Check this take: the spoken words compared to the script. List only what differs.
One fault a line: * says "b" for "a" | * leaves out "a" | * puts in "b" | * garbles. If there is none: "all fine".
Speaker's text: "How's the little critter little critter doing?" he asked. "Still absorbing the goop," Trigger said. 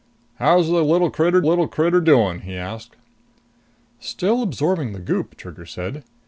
all fine